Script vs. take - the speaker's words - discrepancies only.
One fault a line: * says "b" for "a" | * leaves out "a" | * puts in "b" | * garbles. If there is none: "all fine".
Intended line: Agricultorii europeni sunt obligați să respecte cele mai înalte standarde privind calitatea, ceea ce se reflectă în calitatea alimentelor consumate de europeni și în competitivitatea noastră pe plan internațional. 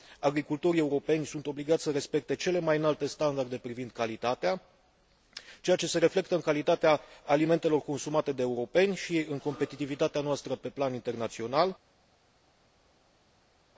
all fine